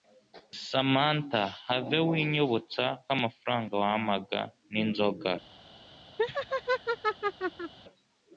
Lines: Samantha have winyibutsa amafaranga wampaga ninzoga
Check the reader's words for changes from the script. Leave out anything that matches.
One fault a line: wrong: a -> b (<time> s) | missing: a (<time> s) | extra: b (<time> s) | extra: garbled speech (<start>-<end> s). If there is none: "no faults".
no faults